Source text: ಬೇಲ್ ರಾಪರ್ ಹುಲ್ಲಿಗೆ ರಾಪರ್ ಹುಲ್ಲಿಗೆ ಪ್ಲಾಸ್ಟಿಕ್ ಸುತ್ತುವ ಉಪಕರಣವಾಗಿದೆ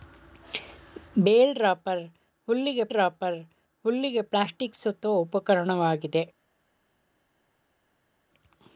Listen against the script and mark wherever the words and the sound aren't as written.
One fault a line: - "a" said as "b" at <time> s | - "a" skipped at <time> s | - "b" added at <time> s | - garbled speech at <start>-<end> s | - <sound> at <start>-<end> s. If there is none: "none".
none